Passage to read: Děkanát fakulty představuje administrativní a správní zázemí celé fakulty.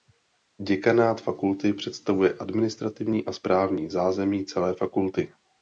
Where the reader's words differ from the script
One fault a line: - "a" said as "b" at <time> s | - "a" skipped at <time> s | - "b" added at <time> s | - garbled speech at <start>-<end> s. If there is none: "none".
none